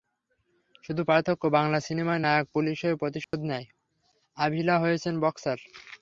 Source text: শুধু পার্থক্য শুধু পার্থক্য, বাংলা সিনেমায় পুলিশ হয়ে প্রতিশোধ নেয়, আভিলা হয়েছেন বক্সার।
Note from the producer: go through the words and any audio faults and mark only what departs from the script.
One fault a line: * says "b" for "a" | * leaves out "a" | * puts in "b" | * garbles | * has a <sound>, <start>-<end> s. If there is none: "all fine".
* leaves out "শুধু পার্থক্য"
* puts in "নায়ক"
* has a dropout, 3.2-3.3 s